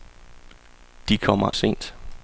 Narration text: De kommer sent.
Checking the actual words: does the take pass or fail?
pass